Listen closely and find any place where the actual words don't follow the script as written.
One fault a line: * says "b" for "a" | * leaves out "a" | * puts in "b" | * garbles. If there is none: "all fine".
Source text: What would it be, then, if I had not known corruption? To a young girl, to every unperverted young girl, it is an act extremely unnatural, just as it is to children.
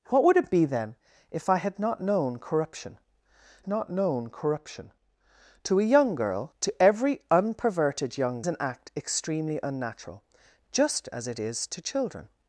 * puts in "not known corruption"
* leaves out "girl it is"